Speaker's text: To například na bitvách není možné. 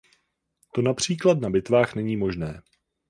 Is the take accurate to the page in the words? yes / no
yes